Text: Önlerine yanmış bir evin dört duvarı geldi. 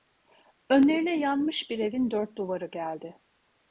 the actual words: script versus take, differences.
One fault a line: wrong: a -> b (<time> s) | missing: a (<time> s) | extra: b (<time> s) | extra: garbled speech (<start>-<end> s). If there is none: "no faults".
no faults